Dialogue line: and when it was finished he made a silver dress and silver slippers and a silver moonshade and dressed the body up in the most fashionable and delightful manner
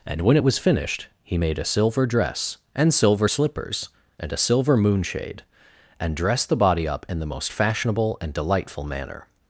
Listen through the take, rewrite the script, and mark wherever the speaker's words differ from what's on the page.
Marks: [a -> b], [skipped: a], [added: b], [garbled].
and when it was finished he made a silver dress and silver slippers and a silver moonshade and dressed the body up in the most fashionable and delightful manner